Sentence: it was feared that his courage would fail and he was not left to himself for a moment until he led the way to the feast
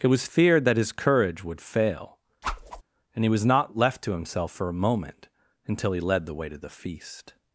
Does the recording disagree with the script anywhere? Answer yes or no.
no